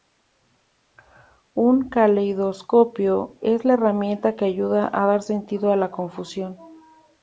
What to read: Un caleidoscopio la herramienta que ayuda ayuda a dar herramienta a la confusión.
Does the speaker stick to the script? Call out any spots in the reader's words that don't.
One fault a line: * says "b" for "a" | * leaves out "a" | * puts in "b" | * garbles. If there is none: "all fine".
* puts in "es"
* leaves out "ayuda"
* says "sentido" for "herramienta"